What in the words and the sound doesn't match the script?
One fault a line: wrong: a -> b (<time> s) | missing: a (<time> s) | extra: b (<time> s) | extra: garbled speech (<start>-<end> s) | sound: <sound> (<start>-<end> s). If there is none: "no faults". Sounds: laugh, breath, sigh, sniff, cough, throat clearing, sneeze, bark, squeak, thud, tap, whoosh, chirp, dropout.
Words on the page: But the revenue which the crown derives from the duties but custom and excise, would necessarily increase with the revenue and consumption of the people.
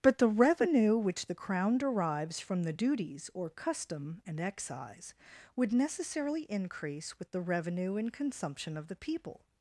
wrong: but -> or (3.3 s)